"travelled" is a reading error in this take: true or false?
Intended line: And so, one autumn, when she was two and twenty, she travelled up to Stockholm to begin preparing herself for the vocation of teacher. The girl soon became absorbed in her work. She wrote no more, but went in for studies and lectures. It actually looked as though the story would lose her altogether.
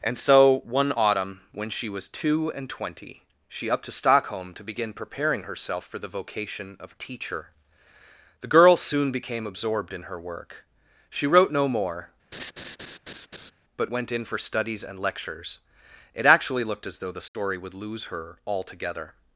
true